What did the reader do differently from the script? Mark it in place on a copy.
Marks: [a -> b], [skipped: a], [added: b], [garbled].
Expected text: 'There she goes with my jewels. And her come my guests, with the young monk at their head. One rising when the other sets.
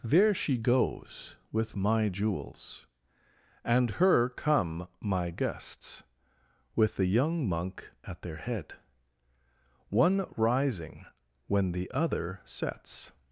'There she goes with my jewels. And her come my guests, with the young monk at their head. One rising when the other sets.